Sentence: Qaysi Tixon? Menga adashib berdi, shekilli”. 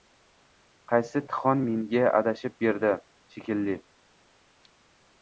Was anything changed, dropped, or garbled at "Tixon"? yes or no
no